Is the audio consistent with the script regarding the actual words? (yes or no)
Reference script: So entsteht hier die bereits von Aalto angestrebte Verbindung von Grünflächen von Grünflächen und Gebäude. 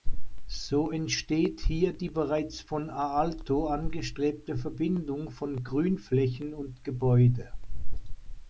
no